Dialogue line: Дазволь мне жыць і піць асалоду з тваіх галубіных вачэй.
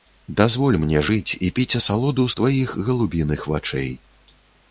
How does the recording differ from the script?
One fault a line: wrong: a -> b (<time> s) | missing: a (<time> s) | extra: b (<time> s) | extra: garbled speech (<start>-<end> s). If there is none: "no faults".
no faults